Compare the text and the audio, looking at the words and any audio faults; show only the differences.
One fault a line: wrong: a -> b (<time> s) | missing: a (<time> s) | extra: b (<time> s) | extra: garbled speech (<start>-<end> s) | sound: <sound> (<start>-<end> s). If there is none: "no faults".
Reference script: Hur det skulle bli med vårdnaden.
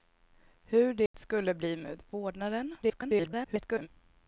sound: dropout (1.1-1.1 s)
extra: garbled speech (2.8-3.9 s)